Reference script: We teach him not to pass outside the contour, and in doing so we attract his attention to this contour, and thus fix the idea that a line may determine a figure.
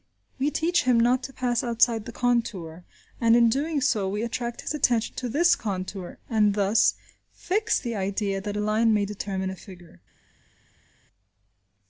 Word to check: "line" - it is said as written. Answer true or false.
true